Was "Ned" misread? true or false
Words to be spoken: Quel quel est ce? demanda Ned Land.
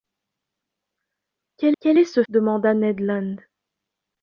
false